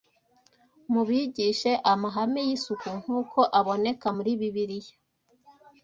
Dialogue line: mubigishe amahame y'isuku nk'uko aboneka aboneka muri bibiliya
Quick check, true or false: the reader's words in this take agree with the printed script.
false